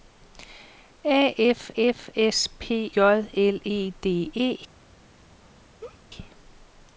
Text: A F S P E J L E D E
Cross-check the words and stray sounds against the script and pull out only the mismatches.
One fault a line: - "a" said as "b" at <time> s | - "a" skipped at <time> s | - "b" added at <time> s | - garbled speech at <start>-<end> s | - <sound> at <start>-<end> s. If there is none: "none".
- "F" added at 1.8 s
- "E" skipped at 2.9 s
- laugh at 5.8-6.0 s